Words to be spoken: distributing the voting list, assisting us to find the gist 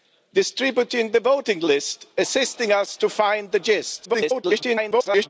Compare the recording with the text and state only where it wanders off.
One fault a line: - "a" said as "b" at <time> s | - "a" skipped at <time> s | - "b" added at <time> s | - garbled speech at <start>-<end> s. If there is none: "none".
- garbled speech at 4.0-5.3 s